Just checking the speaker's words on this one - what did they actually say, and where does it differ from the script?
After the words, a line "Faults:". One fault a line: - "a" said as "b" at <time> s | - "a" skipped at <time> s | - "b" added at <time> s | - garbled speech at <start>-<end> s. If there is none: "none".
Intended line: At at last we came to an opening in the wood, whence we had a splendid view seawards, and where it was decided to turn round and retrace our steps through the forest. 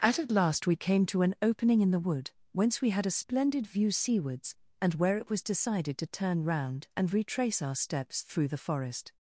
At at last we came to an opening in the wood, whence we had a splendid view seawards, and where it was decided to turn round and retrace our steps through the forest.
Faults:
none